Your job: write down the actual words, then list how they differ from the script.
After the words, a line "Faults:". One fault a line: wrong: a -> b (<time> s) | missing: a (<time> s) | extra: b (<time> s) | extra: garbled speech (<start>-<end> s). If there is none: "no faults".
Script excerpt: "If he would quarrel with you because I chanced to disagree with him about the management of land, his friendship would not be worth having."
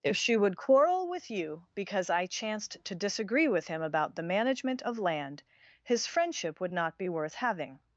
"If she would quarrel with you because I chanced to disagree with him about the management of land, his friendship would not be worth having."
Faults:
wrong: he -> she (0.2 s)